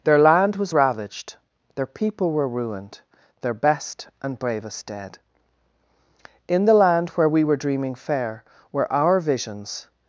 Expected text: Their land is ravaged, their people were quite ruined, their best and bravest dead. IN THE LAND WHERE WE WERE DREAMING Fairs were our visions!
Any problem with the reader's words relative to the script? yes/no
yes